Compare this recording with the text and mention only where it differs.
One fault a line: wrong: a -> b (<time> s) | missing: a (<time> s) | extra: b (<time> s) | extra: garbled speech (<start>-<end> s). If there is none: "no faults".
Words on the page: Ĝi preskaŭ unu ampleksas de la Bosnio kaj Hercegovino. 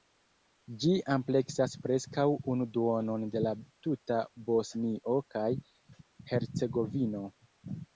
extra: ampleksas (1.1 s)
wrong: ampleksas -> duonon (2.8 s)
extra: tuta (3.9 s)